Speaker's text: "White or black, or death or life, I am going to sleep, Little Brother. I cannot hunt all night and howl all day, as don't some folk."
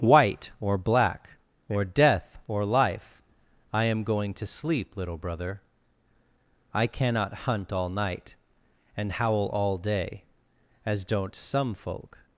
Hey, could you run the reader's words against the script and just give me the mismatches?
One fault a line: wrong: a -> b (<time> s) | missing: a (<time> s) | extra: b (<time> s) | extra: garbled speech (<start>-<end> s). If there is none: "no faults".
no faults